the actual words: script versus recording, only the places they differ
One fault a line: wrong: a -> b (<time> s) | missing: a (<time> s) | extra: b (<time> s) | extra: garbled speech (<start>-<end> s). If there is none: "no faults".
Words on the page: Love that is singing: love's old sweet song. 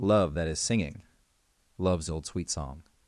no faults